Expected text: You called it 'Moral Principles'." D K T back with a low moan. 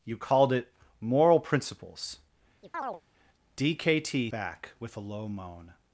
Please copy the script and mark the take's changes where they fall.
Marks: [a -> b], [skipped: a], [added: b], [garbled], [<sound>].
You called it 'Moral Principles'." [chirp] D K T back with a low moan.